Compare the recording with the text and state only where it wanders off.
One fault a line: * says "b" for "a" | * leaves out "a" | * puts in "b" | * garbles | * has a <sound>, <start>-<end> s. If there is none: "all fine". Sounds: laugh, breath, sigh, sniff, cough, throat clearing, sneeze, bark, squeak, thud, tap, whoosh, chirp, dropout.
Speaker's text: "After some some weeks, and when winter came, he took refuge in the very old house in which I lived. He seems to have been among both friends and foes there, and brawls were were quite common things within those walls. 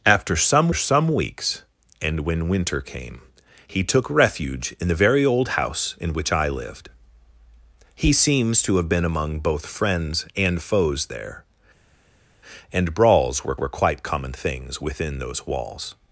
all fine